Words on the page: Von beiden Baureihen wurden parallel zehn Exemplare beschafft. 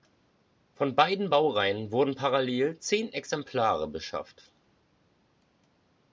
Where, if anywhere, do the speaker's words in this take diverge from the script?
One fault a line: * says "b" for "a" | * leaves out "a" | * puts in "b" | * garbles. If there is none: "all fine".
all fine